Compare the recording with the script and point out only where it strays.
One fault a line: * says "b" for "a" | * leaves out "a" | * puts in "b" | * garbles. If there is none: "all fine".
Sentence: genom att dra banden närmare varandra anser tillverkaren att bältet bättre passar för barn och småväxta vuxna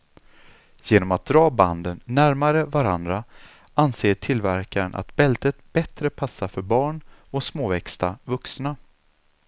all fine